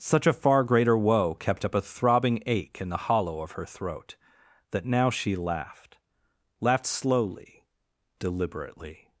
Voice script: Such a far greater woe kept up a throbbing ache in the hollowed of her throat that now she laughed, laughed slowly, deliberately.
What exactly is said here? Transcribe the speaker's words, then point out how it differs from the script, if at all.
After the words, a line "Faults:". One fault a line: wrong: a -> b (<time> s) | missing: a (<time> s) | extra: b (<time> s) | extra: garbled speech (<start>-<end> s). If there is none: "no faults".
Such a far greater woe kept up a throbbing ache in the hollow of her throat that now she laughed, laughed slowly, deliberately.
Faults:
wrong: hollowed -> hollow (3.0 s)